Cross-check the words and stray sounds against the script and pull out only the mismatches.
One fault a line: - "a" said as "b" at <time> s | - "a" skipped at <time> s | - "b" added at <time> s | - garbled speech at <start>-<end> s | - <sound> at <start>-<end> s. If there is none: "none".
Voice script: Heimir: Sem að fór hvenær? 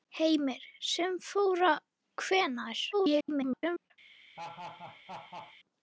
- garbled speech at 2.9-3.9 s
- laugh at 4.4-5.6 s